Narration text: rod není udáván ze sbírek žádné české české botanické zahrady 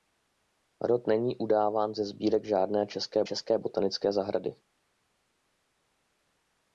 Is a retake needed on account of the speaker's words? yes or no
no